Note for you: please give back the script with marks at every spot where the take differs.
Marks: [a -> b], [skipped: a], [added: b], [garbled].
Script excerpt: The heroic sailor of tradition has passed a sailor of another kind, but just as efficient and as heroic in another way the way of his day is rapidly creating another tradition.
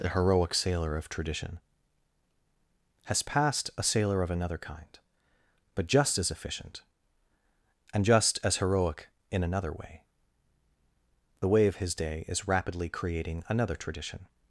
The heroic sailor of tradition has passed a sailor of another kind, but just as efficient and [added: just] as heroic in another way the way of his day is rapidly creating another tradition.